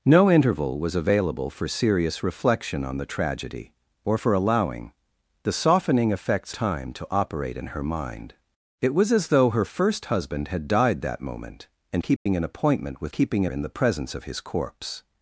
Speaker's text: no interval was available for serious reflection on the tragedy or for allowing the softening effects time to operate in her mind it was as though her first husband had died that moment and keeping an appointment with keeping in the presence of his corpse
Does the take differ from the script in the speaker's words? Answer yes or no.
no